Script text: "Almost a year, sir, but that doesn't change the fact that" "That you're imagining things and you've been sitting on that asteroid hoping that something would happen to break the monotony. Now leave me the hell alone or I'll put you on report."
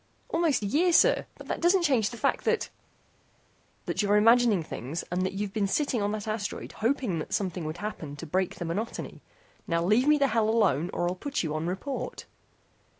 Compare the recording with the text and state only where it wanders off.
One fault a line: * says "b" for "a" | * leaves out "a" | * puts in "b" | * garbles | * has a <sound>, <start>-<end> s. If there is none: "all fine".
* puts in "that"